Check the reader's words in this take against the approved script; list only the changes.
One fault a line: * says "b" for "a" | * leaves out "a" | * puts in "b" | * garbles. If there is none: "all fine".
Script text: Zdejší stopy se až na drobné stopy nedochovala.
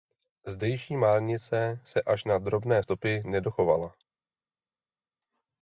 * says "márnice" for "stopy"